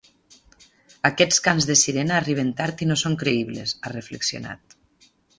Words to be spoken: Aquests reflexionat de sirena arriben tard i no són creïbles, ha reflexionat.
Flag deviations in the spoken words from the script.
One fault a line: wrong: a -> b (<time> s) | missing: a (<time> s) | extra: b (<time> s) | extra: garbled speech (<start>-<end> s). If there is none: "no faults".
wrong: reflexionat -> cants (1.5 s)